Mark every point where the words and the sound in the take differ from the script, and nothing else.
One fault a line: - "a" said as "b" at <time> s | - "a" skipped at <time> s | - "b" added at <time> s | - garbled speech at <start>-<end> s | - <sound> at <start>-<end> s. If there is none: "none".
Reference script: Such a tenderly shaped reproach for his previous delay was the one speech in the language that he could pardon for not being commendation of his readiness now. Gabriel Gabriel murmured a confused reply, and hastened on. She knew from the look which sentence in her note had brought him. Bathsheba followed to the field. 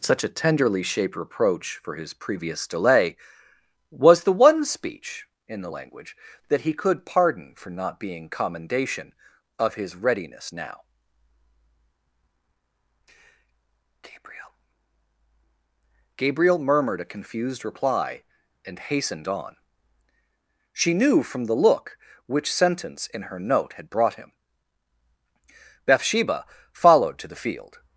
none